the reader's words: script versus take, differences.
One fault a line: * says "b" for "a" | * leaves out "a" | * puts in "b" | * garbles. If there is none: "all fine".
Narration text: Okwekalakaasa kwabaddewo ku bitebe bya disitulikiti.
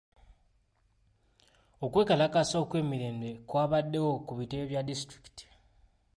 * puts in "okw'emirembe"